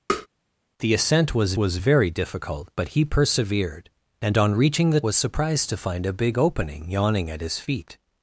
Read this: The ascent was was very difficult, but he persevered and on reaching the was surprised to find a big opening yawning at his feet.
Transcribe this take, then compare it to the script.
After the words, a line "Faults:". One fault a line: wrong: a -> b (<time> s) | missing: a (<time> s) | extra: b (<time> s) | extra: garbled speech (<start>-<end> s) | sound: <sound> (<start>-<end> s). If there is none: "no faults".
The ascent was was very difficult, but he persevered and on reaching the was surprised to find a big opening yawning at his feet.
Faults:
sound: tap (0.1-0.3 s)